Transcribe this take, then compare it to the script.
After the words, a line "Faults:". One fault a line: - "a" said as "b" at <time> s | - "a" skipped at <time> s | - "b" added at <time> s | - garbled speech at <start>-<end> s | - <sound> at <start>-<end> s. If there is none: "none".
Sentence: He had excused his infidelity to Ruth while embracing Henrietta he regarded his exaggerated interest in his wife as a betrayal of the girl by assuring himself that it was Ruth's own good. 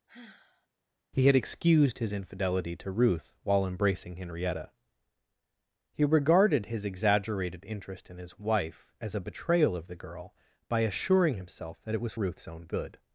He had excused his infidelity to Ruth while embracing Henrietta he regarded his exaggerated interest in his wife as a betrayal of the girl by assuring himself that it was Ruth's own good.
Faults:
- sigh at 0.1-0.7 s